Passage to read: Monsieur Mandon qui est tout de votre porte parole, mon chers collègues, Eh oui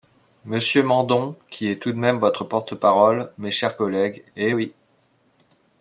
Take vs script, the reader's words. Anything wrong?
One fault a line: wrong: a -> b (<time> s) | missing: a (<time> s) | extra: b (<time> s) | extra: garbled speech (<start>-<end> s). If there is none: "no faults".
extra: même (2.0 s)
wrong: mon -> mes (3.4 s)